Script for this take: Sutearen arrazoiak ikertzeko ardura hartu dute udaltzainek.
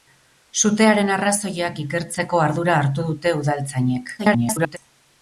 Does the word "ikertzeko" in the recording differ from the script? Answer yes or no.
no